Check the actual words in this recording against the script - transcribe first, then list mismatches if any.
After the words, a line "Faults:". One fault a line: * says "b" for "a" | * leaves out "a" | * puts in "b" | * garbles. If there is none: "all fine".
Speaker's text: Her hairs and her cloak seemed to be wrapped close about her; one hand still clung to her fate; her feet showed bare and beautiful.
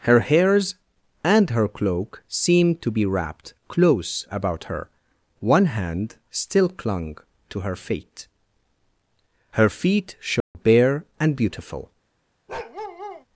Her hairs and her cloak seemed to be wrapped close about her; one hand still clung to her fate; her feet showed bare and beautiful.
Faults:
all fine